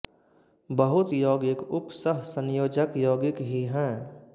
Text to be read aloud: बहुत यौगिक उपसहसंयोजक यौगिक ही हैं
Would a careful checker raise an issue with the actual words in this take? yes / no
no